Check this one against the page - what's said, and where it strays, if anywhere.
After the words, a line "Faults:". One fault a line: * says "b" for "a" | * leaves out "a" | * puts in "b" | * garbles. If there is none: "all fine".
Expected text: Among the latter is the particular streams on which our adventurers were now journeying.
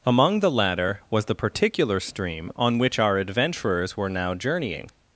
Among the latter was the particular stream on which our adventurers were now journeying.
Faults:
* says "was" for "is"
* says "stream" for "streams"